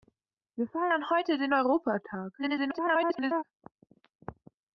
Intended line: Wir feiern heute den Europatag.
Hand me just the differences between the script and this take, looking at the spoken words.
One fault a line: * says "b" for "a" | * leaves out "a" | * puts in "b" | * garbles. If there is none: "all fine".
* garbles